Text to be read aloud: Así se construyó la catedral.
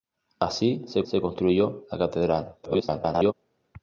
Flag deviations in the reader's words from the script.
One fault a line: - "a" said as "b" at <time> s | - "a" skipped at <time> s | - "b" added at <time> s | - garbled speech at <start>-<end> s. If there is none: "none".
- "se" added at 1.0 s
- garbled speech at 2.6-3.3 s